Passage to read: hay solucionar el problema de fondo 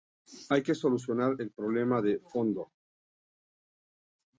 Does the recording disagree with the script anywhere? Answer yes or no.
yes